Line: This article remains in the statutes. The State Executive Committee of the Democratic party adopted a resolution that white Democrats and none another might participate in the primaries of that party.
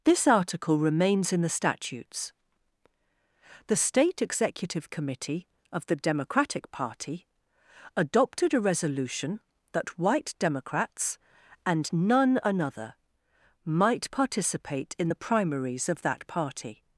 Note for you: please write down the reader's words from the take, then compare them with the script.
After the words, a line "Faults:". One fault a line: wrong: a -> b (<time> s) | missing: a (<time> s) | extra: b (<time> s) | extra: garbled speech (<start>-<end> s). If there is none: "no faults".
This article remains in the statutes. The State Executive Committee of the Democratic party adopted a resolution that white Democrats and none another might participate in the primaries of that party.
Faults:
no faults